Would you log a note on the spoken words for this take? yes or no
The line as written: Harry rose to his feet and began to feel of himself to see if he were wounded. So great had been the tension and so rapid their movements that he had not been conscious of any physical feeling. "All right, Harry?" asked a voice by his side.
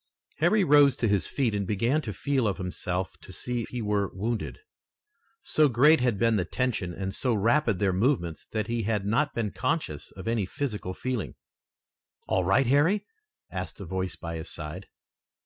yes